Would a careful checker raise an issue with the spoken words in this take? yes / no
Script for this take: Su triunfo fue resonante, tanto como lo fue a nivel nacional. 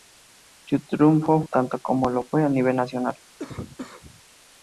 yes